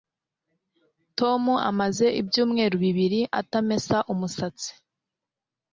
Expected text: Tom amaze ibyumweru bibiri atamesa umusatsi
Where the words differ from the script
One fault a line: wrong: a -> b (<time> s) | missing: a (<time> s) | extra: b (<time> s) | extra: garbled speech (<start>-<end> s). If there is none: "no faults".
no faults